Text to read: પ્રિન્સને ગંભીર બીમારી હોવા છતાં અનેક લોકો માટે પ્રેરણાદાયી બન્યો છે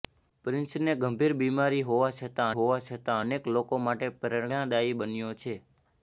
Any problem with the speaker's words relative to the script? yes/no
yes